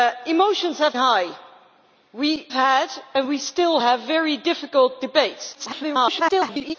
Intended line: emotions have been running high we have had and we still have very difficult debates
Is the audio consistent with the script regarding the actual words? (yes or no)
no